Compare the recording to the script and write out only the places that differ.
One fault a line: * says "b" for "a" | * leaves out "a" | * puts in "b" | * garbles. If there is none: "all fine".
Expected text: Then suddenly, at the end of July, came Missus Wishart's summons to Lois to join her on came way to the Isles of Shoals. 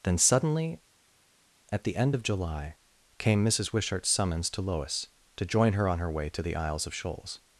* says "her" for "came"